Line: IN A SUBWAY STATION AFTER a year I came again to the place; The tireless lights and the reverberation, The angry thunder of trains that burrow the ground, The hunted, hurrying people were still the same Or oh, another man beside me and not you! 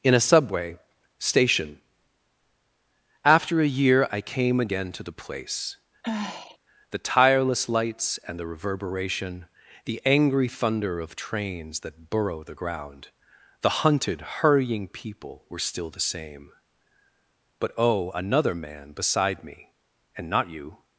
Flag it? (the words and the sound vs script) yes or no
yes